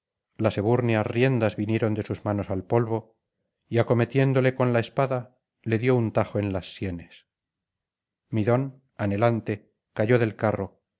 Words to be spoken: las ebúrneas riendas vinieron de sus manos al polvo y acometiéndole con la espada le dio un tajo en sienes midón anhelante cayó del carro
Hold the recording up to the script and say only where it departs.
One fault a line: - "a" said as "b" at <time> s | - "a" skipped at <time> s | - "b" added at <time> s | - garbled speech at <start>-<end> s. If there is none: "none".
- "las" added at 6.5 s